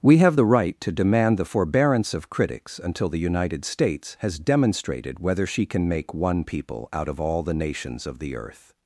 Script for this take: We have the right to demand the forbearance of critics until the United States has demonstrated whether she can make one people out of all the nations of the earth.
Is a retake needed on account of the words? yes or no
no